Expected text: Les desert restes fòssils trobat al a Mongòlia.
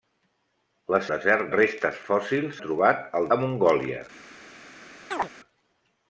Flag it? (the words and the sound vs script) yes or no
yes